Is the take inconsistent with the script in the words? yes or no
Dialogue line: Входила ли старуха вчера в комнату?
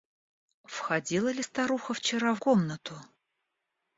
no